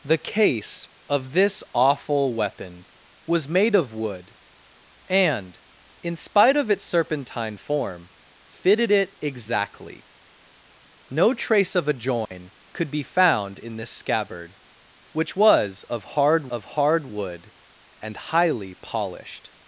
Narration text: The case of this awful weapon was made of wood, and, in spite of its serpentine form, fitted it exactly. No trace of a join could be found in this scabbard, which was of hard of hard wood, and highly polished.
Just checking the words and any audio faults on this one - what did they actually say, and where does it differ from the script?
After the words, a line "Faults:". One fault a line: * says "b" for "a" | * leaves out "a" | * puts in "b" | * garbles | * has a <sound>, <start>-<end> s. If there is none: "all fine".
The case of this awful weapon was made of wood, and, in spite of its serpentine form, fitted it exactly. No trace of a join could be found in this scabbard, which was of hard of hard wood, and highly polished.
Faults:
* has a dropout, 12.3-12.3 s